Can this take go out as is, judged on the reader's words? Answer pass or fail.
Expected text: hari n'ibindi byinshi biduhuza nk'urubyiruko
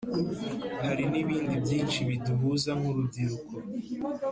pass